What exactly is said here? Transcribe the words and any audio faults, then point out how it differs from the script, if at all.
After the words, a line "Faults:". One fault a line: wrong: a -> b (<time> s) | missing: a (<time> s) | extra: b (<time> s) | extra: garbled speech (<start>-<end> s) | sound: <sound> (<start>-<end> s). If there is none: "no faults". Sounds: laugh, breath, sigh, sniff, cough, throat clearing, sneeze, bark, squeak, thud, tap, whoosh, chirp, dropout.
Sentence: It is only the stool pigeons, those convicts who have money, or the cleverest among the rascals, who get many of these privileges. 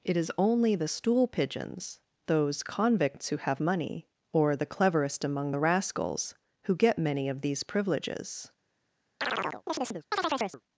It is only the stool pigeons, those convicts who have money, or the cleverest among the rascals, who get many of these privileges.
Faults:
sound: chirp (9.2-10.6 s)